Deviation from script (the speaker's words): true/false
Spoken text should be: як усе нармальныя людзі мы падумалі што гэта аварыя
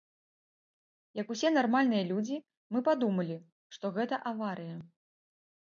false